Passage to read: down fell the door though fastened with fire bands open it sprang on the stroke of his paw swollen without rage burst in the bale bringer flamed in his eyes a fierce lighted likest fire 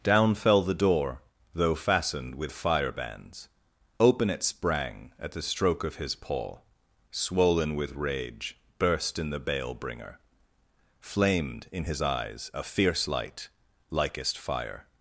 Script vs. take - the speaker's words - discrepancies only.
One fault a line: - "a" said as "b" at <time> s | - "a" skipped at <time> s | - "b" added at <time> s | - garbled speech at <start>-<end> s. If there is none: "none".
- "on" said as "at" at 5.2 s
- "without" said as "with" at 7.8 s
- "lighted" said as "light" at 13.1 s